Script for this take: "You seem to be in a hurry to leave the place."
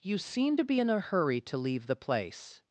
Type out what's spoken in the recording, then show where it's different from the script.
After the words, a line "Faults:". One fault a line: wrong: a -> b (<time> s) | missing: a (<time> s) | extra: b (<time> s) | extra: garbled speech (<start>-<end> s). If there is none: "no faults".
"You seem to be in a hurry to leave the place."
Faults:
no faults